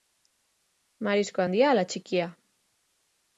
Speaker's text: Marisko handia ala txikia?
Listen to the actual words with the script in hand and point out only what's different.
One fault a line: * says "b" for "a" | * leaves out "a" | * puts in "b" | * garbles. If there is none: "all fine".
all fine